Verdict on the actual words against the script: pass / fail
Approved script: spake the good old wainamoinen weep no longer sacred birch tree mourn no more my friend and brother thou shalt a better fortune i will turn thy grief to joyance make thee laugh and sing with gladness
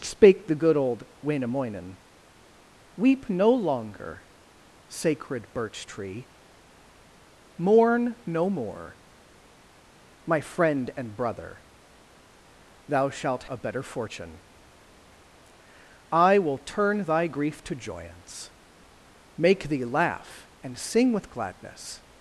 pass